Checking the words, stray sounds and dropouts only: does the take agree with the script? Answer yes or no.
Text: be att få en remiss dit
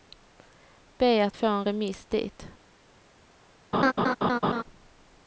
no